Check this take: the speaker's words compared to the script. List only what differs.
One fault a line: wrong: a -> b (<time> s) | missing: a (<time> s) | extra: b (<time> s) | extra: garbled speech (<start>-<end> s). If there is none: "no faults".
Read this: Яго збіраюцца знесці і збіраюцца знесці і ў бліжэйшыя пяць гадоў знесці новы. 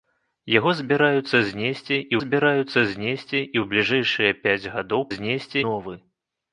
no faults